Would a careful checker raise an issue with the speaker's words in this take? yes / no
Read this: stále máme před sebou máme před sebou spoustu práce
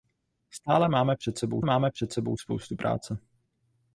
no